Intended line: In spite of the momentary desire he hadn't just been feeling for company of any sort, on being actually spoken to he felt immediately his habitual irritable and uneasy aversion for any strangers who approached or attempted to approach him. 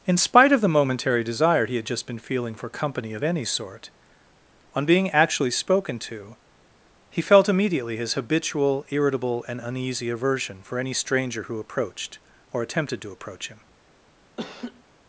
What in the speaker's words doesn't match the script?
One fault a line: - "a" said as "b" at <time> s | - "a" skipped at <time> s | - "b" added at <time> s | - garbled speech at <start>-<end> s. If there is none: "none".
- "hadn't" said as "had" at 1.8 s
- "strangers" said as "stranger" at 10.9 s